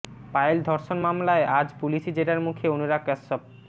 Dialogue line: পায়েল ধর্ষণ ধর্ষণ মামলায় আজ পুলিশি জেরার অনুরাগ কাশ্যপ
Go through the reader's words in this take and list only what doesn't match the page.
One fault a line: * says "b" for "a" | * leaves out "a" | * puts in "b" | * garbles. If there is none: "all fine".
* leaves out "ধর্ষণ"
* puts in "মুখে"